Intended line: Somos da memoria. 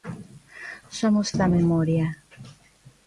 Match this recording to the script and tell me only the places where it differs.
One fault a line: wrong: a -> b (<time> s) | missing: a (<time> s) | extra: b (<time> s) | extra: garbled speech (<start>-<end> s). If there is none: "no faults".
no faults